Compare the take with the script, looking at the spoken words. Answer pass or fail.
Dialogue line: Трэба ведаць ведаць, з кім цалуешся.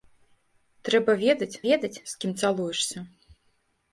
pass